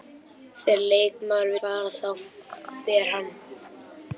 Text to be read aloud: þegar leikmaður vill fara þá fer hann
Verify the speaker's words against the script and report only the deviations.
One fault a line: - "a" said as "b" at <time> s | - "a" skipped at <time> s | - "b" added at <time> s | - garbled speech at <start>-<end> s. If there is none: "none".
- "vill" skipped at 1.5 s